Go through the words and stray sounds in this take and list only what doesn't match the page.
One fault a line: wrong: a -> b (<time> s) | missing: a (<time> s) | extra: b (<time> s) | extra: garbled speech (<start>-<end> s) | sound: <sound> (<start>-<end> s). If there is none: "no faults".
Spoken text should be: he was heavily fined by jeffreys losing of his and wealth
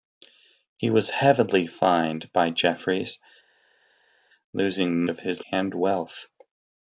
no faults